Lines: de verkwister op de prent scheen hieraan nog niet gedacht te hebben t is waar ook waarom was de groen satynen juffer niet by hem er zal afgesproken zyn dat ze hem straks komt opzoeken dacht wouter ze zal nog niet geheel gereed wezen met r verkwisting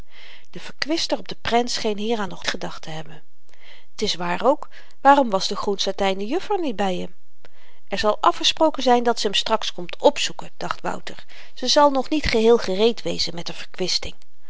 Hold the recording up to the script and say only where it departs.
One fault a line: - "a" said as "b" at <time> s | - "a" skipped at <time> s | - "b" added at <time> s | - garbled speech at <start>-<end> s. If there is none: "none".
- "niet" skipped at 2.5 s